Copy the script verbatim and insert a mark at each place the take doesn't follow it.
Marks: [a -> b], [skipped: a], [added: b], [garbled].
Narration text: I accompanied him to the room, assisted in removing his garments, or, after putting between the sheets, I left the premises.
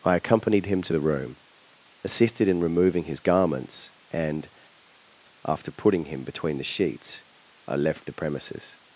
I accompanied him to the room, assisted in removing his garments, [or, -> and] after putting [added: him] between the sheets, I left the premises.